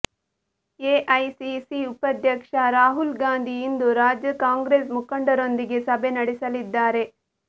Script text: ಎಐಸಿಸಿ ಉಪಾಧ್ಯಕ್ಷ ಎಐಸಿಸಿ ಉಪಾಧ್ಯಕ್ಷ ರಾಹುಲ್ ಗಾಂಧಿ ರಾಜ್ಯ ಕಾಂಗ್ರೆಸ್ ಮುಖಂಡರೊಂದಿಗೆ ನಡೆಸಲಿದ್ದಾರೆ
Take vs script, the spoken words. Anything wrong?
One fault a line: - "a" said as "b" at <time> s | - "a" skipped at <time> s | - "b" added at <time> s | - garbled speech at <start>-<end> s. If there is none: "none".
- "ಎಐಸಿಸಿ ಉಪಾಧ್ಯಕ್ಷ" skipped at 2.5 s
- "ಇಂದು" added at 3.6 s
- "ಸಭೆ" added at 5.9 s